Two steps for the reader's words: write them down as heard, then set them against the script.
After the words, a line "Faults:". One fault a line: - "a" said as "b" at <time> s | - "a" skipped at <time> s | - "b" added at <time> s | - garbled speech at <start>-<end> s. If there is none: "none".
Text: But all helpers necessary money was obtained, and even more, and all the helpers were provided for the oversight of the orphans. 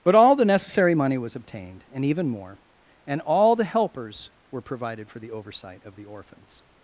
But all the necessary money was obtained, and even more, and all the helpers were provided for the oversight of the orphans.
Faults:
- "helpers" said as "the" at 0.3 s